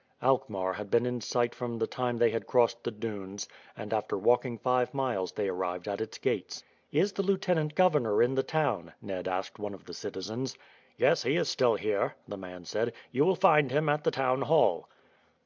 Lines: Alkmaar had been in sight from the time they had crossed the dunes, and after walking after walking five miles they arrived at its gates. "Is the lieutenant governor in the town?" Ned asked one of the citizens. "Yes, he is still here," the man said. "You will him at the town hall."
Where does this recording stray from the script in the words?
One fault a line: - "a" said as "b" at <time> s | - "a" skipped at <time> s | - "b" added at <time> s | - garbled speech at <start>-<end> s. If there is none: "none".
- "after walking" skipped at 4.6 s
- "find" added at 13.3 s